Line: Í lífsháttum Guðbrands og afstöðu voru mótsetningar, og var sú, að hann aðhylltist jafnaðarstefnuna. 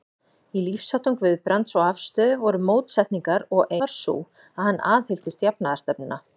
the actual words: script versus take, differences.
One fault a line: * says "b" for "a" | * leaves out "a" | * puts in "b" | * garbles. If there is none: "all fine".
all fine